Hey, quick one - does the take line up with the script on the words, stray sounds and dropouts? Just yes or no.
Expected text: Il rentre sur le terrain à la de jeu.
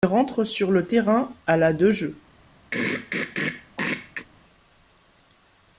no